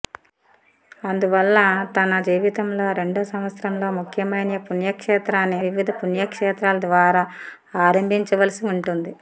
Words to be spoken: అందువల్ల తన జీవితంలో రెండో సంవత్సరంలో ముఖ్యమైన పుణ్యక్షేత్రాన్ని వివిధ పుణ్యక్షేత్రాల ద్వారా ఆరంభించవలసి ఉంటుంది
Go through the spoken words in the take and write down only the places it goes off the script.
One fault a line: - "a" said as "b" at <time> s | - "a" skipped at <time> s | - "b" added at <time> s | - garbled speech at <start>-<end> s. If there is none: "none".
none